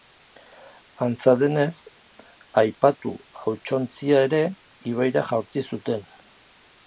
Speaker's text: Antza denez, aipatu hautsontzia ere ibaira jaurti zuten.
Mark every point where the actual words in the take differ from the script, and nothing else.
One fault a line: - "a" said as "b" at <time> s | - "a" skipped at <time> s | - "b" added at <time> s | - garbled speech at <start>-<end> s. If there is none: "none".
none